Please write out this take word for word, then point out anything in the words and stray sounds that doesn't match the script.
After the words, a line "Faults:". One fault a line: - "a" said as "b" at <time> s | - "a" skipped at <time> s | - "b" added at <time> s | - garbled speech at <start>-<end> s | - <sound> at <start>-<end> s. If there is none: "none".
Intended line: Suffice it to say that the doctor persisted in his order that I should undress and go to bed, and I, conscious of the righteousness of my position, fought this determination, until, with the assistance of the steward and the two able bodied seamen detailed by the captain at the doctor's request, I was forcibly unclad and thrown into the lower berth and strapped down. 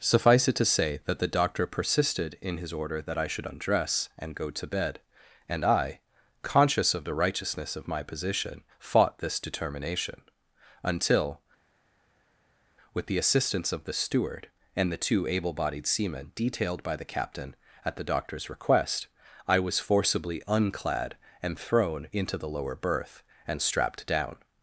Suffice it to say that the doctor persisted in his order that I should undress and go to bed, and I, conscious of the righteousness of my position, fought this determination, until, with the assistance of the steward and the two able bodied seamen detailed by the captain at the doctor's request, I was forcibly unclad and thrown into the lower berth and strapped down.
Faults:
none